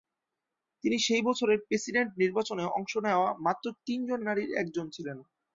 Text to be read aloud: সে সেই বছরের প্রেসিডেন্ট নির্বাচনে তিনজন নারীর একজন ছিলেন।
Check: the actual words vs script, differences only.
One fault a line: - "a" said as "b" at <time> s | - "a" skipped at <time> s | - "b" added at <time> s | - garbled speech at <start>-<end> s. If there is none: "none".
- "সে" said as "তিনি" at 0.8 s
- "অংশ নেওয়া মাত্র" added at 2.8 s